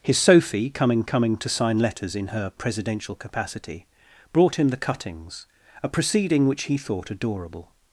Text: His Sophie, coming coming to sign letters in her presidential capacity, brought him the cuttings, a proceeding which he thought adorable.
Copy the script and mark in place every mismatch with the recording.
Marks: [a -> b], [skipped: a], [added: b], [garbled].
His Sophie, coming coming to sign letters in her presidential capacity, brought him the cuttings, a proceeding which he thought adorable.